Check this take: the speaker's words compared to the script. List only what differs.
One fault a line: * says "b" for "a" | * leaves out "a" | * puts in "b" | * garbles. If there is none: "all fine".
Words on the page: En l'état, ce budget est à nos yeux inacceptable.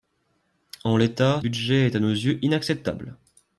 * leaves out "ce"